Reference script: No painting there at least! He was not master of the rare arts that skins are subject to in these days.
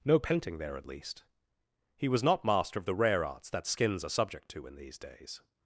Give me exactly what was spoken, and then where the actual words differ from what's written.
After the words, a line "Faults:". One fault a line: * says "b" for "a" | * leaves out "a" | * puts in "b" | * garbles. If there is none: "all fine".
No painting there at least! He was not master of the rare arts that skins are subject to in these days.
Faults:
all fine